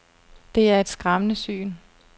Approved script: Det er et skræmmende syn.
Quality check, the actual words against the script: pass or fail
pass